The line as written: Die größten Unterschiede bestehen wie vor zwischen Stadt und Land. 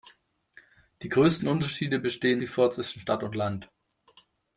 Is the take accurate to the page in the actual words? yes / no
yes